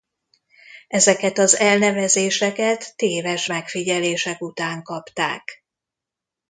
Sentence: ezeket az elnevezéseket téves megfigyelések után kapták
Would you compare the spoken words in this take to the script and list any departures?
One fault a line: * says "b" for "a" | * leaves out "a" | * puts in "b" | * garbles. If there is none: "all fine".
all fine